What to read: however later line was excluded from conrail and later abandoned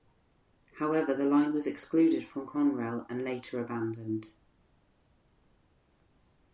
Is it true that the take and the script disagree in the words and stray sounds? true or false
true